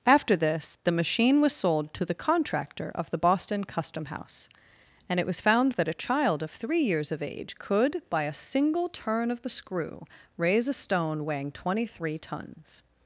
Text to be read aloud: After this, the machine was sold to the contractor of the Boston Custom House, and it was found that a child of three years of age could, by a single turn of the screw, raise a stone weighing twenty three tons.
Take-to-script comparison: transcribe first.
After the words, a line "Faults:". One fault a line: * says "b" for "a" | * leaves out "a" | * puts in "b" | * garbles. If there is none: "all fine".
After this, the machine was sold to the contractor of the Boston Custom House, and it was found that a child of three years of age could, by a single turn of the screw, raise a stone weighing twenty three tons.
Faults:
all fine